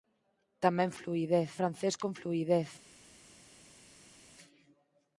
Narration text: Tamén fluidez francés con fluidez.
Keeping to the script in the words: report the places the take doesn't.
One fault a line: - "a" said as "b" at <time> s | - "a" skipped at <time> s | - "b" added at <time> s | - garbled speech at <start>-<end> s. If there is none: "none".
none